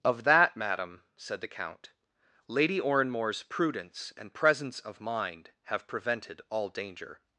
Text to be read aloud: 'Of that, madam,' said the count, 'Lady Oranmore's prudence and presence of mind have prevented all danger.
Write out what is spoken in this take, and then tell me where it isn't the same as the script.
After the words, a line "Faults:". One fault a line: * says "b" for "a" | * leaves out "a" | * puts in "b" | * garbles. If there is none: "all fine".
'Of that, madam,' said the count, 'Lady Oranmore's prudence and presence of mind have prevented all danger.
Faults:
all fine